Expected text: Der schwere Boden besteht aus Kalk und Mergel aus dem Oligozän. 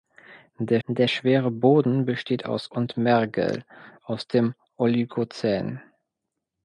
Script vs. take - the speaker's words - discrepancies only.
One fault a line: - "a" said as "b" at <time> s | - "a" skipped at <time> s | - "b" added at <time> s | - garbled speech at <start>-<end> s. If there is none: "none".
- "der" added at 0.9 s
- "Kalk" skipped at 2.7 s